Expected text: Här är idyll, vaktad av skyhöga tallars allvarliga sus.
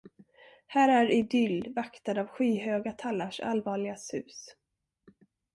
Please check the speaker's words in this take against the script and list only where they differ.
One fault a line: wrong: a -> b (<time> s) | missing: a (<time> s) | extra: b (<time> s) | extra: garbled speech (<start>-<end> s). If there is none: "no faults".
no faults